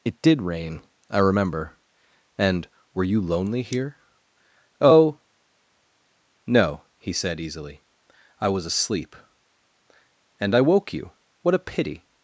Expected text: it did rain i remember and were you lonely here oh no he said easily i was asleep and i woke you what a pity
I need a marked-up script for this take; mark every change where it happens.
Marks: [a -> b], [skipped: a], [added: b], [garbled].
it did rain i remember and were you lonely here oh no he said easily i was asleep and i woke you what a pity